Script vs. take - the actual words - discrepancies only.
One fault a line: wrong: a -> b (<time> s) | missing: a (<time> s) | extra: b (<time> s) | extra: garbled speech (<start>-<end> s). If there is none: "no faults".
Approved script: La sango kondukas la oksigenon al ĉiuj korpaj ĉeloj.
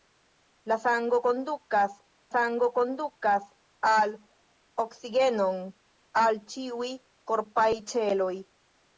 extra: sango kondukas (2.3 s)